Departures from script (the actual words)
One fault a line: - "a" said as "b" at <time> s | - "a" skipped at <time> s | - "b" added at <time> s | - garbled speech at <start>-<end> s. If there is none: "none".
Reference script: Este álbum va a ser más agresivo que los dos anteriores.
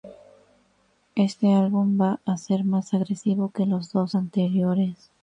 none